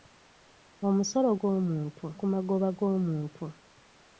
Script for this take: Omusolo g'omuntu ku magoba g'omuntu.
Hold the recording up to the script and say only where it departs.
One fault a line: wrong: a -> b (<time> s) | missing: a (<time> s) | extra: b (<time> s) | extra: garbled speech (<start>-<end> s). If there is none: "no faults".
no faults